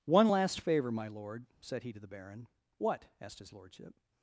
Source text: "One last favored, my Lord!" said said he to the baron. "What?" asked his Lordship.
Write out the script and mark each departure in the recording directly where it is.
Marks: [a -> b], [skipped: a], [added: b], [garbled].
"One last [favored, -> favor] my Lord!" said [skipped: said] he to the baron. "What?" asked his Lordship.